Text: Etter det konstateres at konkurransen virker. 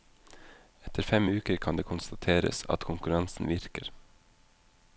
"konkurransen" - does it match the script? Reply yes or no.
yes